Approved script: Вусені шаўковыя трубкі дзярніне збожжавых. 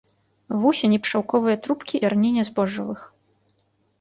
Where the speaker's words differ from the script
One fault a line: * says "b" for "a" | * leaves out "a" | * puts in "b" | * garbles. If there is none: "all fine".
all fine